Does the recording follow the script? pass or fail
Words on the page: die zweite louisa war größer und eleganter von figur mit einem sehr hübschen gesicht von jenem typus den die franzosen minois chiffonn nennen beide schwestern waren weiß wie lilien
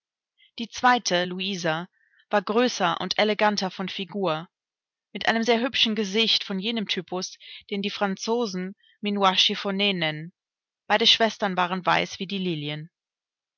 fail